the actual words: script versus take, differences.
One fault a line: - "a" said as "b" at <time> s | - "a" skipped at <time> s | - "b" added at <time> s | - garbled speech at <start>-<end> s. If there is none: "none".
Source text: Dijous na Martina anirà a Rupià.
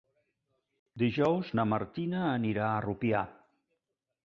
none